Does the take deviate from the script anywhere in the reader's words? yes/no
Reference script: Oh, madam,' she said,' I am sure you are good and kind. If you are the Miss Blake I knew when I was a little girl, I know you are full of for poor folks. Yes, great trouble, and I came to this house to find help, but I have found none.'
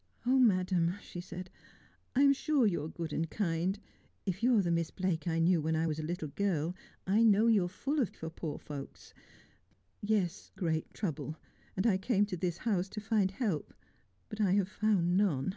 no